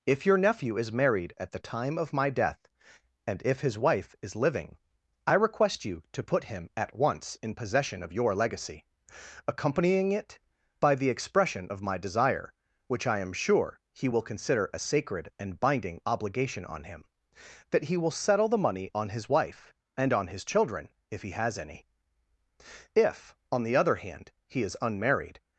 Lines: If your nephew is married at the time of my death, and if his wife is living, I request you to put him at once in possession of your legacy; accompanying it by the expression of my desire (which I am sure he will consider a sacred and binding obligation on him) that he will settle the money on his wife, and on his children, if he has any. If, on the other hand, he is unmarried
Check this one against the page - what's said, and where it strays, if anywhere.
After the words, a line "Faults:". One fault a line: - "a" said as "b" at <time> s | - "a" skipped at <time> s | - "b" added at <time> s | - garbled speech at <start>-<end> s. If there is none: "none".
If your nephew is married at the time of my death, and if his wife is living, I request you to put him at once in possession of your legacy; accompanying it by the expression of my desire (which I am sure he will consider a sacred and binding obligation on him) that he will settle the money on his wife, and on his children, if he has any. If, on the other hand, he is unmarried
Faults:
none